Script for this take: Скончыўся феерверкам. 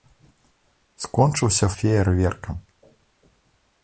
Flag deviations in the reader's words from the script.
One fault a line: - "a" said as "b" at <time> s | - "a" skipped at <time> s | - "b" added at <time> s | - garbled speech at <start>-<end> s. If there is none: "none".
none